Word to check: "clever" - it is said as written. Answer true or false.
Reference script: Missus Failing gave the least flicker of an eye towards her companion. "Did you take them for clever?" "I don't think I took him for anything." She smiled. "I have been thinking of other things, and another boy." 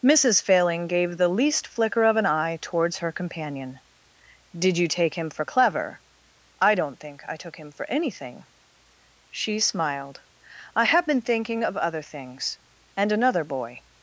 true